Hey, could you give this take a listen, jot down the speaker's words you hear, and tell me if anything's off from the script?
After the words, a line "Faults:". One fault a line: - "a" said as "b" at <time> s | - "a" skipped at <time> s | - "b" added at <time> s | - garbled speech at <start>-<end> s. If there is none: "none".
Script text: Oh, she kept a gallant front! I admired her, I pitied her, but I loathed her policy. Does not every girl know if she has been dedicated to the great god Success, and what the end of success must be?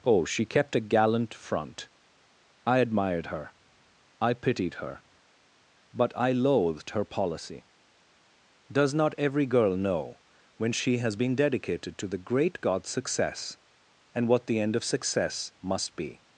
Oh, she kept a gallant front! I admired her, I pitied her, but I loathed her policy. Does not every girl know when she has been dedicated to the great god Success, and what the end of success must be?
Faults:
- "if" said as "when" at 10.6 s